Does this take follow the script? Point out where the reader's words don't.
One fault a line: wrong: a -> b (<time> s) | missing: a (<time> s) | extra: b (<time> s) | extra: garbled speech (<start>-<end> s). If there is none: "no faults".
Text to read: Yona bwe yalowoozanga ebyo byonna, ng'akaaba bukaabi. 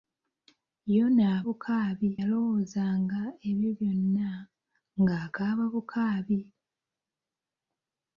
wrong: bwe -> bukaabi (1.5 s)